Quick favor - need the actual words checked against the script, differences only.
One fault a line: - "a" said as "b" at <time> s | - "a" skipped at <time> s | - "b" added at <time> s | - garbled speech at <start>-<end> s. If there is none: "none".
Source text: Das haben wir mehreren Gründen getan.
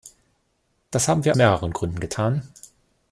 none